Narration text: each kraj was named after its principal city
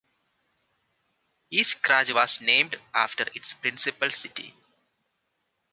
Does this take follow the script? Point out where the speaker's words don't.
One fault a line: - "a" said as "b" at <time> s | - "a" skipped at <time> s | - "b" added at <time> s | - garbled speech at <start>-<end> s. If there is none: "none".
none